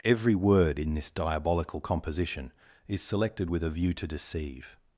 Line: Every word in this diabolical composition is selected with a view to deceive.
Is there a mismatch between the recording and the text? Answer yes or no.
no